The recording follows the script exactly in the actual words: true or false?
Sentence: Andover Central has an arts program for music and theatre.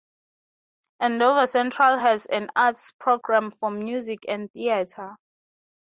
true